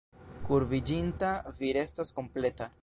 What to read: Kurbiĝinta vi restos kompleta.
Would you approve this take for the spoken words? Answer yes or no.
yes